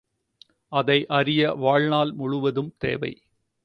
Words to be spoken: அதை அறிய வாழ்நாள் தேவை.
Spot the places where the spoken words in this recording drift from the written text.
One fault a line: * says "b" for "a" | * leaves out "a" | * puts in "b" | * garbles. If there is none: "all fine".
* puts in "முழுவதும்"